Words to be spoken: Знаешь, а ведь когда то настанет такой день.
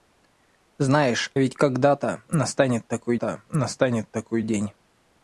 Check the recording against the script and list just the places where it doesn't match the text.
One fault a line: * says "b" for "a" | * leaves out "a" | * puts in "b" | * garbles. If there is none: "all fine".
* leaves out "а"
* puts in "то настанет такой"